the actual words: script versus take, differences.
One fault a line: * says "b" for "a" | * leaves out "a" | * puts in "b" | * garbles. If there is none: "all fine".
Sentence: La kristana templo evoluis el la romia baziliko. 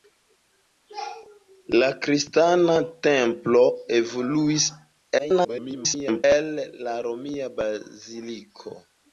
* garbles